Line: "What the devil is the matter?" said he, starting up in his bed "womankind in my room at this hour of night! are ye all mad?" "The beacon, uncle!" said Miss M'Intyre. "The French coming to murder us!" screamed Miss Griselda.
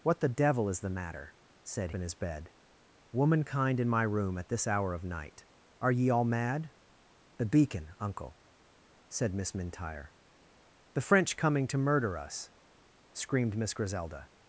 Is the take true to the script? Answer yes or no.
no